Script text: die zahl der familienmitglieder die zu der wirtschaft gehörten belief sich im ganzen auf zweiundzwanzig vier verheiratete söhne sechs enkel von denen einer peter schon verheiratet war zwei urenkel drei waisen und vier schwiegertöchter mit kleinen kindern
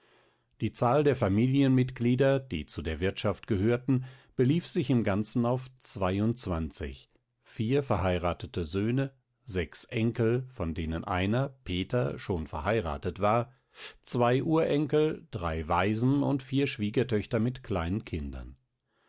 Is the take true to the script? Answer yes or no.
yes